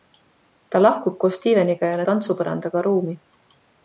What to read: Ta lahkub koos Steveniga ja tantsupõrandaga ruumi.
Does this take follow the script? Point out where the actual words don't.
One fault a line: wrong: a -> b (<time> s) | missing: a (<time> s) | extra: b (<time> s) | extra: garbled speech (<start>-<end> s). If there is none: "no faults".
no faults